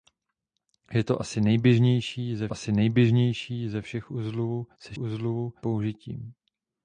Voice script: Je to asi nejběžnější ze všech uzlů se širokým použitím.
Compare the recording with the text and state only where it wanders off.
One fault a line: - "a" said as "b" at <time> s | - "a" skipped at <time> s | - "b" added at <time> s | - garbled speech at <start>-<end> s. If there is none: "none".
- "asi nejběžnější ze" added at 2.5 s
- "širokým" said as "uzlů" at 5.0 s